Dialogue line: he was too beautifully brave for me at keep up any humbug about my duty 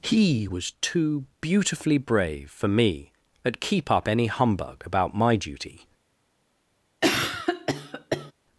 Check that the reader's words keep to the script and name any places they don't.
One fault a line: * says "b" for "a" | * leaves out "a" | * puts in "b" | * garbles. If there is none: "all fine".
all fine